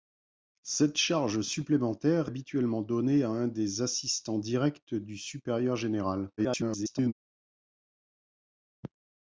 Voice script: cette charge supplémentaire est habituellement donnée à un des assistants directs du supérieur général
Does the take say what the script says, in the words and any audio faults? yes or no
no